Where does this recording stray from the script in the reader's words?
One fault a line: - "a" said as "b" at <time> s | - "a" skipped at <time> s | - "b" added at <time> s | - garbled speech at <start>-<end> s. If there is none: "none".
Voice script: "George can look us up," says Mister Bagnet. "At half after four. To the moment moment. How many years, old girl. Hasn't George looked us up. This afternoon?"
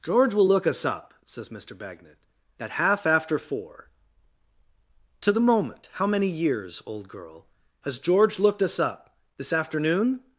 - "can" said as "will" at 0.3 s
- "moment" skipped at 5.9 s
- "Hasn't" said as "Has" at 7.8 s